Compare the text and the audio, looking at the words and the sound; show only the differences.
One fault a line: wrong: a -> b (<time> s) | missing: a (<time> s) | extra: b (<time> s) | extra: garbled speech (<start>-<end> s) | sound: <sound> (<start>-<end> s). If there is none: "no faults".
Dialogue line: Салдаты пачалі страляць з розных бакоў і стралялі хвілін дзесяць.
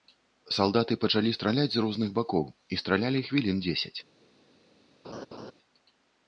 sound: laugh (5.0-5.5 s)